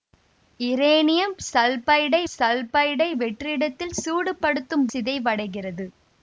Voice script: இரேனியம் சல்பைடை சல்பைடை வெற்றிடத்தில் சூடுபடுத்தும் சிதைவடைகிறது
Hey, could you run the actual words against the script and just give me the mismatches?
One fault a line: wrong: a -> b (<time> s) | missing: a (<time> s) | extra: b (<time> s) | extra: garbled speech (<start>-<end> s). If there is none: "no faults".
no faults